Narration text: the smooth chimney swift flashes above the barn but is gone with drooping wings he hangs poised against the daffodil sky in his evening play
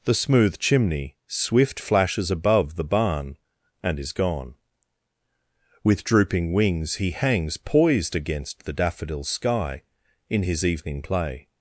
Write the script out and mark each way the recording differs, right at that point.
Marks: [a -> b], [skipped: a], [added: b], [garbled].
the smooth chimney swift flashes above the barn [but -> and] is gone with drooping wings he hangs poised against the daffodil sky in his evening play